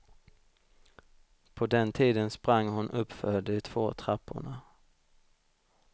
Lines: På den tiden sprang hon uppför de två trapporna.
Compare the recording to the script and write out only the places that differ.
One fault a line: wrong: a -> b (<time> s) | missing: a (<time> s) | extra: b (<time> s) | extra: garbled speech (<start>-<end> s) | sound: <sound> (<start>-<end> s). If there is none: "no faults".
no faults